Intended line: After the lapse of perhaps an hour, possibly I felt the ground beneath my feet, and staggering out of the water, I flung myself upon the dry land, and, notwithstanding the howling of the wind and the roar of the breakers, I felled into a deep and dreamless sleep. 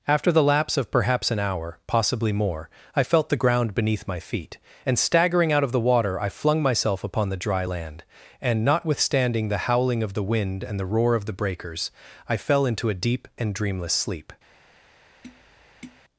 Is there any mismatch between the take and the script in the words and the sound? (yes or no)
yes